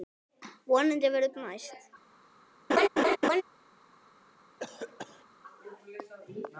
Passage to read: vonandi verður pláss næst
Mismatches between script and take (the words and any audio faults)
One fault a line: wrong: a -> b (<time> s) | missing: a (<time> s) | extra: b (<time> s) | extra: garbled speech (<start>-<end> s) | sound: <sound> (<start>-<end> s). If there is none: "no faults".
missing: pláss (1.3 s)
sound: laugh (2.7-3.4 s)
sound: cough (4.6-5.2 s)